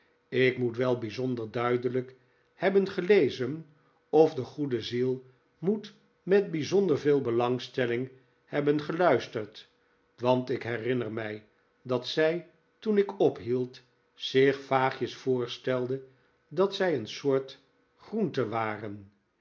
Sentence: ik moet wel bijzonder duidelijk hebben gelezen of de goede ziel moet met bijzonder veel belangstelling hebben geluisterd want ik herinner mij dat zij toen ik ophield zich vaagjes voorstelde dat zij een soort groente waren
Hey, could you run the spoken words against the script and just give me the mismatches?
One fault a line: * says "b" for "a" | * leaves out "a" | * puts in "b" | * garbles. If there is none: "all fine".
all fine